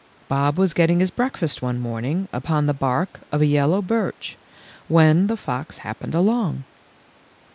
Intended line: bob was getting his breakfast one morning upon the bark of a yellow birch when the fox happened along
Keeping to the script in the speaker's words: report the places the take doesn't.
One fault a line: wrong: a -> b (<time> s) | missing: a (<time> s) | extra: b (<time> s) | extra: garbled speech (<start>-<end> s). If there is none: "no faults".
no faults